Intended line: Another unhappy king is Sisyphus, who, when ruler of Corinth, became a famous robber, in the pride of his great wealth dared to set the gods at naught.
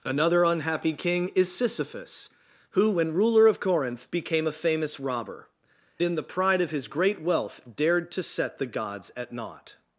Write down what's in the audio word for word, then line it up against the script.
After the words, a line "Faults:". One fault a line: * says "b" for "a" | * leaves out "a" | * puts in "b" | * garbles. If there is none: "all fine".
Another unhappy king is Sisyphus, who, when ruler of Corinth, became a famous robber, in the pride of his great wealth dared to set the gods at naught.
Faults:
all fine